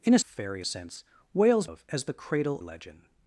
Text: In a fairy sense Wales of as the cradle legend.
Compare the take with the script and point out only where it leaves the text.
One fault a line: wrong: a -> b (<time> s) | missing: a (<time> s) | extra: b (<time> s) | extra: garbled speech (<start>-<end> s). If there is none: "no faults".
no faults